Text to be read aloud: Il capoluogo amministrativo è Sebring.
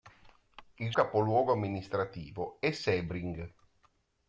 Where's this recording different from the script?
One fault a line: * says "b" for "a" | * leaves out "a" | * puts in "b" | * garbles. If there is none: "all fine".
all fine